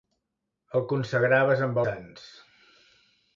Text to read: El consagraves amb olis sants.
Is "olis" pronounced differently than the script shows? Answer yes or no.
yes